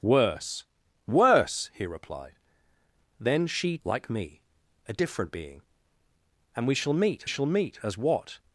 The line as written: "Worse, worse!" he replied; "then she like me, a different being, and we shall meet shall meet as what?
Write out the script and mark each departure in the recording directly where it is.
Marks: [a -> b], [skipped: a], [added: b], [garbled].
"Worse, worse!" he replied; "then she like me, a different being, and we shall meet shall meet as what?